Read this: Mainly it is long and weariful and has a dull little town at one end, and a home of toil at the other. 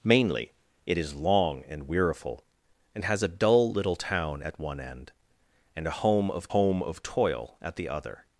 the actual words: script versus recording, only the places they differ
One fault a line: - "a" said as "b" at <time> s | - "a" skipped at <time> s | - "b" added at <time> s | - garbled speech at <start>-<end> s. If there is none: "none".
- "home of" added at 6.5 s